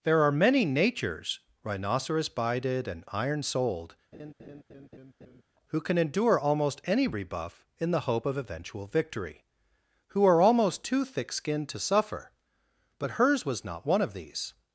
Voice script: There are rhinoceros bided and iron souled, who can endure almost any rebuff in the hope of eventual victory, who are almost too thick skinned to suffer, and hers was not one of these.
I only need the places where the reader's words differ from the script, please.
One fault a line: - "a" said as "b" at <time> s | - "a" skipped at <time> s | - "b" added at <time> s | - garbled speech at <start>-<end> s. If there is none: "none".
- "many natures" added at 0.3 s
- "and" said as "but" at 13.0 s